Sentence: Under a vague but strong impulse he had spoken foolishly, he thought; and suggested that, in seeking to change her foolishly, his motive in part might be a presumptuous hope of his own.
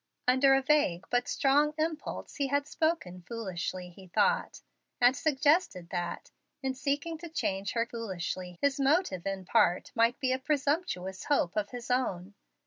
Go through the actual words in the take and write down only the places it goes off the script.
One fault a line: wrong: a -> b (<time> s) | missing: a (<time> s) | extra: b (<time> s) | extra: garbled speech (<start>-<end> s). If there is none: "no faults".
no faults